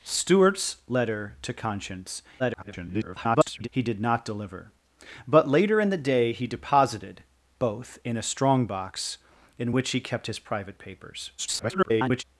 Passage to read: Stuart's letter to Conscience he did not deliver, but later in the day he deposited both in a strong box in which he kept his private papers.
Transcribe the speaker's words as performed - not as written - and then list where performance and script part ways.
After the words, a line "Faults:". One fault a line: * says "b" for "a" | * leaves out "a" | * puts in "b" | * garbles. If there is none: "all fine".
Stuart's letter to Conscience [garbled] he did not deliver, but later in the day he deposited both in a strong box in which he kept his private papers. [garbled]
Faults:
* garbles
* garbles